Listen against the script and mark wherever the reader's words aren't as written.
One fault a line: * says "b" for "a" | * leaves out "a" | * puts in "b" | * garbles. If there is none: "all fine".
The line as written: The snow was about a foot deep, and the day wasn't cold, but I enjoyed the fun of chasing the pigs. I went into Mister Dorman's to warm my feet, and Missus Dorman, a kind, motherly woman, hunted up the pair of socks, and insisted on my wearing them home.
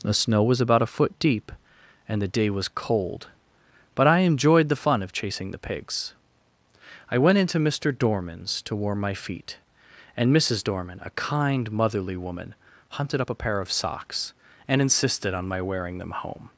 * says "was" for "wasn't"
* says "a" for "the"